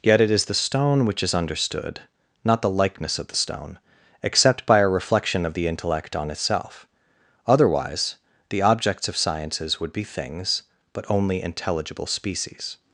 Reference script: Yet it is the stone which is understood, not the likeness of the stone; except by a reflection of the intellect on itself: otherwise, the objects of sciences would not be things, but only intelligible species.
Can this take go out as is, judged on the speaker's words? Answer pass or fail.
fail